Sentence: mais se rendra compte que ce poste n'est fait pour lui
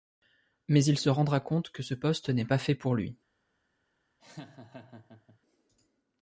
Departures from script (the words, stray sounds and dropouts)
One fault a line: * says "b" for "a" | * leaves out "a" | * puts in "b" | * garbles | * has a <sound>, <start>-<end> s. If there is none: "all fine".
* puts in "il"
* puts in "pas"
* has a laugh, 4.2-5.4 s